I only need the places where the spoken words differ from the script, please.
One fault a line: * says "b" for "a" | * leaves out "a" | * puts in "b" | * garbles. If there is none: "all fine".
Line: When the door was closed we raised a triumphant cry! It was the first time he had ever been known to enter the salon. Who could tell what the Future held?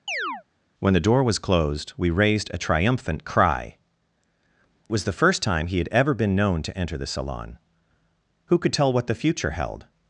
* leaves out "It"